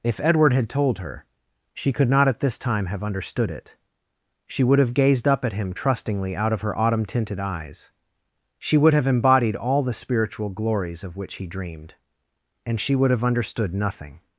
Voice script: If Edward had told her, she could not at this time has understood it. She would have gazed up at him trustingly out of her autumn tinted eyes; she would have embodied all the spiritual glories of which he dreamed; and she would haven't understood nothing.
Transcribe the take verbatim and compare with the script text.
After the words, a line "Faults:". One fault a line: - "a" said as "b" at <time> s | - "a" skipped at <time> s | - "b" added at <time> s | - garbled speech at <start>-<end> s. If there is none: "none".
If Edward had told her, she could not at this time have understood it. She would have gazed up at him trustingly out of her autumn tinted eyes; she would have embodied all the spiritual glories of which he dreamed; and she would have understood nothing.
Faults:
- "has" said as "have" at 2.9 s
- "haven't" said as "have" at 13.1 s